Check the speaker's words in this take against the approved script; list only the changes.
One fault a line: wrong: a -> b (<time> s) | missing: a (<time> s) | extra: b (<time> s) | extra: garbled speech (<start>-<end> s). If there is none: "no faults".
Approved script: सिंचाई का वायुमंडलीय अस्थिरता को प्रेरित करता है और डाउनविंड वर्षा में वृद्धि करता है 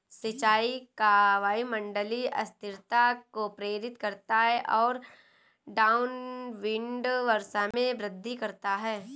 no faults